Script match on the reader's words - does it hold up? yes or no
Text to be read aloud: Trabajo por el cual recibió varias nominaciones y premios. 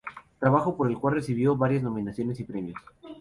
yes